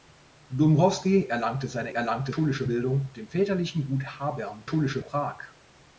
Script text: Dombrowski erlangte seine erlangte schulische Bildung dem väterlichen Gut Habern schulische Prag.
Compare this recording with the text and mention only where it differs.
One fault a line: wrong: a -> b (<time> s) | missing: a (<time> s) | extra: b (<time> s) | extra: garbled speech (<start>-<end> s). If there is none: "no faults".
no faults